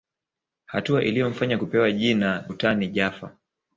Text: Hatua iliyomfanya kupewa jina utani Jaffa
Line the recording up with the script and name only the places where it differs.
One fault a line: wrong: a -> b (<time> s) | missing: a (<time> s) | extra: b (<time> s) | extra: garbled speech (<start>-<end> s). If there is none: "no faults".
no faults